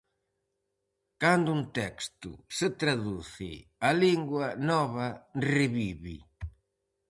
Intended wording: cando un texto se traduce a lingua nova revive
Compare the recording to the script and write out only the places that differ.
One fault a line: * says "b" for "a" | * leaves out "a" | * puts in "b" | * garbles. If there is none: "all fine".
all fine